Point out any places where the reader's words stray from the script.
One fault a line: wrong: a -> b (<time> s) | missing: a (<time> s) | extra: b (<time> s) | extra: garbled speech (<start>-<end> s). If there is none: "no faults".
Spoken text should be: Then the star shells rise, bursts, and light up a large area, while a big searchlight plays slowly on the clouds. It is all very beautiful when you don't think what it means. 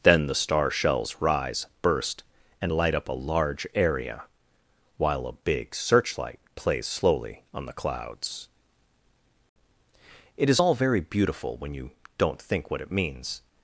wrong: bursts -> burst (1.8 s)